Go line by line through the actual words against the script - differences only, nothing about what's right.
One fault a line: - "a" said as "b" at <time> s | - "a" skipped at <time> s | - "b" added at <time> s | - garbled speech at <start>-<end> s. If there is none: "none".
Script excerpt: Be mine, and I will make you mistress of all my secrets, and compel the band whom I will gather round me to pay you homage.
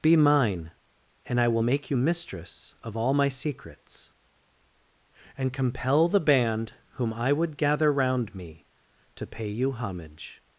- "will" said as "would" at 7.3 s